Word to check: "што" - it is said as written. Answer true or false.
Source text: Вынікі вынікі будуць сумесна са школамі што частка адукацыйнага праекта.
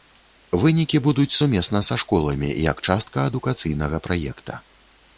false